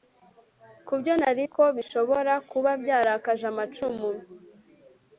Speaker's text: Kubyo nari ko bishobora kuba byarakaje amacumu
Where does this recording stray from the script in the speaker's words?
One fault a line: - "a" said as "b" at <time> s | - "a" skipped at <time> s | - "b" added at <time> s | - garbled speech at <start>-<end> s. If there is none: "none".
none